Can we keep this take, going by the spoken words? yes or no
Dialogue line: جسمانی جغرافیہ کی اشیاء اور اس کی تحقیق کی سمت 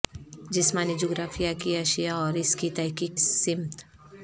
no